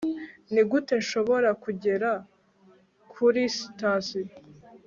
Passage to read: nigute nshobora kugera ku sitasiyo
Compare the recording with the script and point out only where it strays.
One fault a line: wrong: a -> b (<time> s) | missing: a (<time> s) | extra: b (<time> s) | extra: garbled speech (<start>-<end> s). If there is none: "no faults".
wrong: ku -> kuri (3.1 s)